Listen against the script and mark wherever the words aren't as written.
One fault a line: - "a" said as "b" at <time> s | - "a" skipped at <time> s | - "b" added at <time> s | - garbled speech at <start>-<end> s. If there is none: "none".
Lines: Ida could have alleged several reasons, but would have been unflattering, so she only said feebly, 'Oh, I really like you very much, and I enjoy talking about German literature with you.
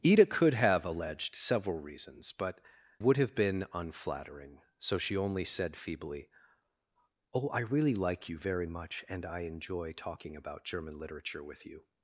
none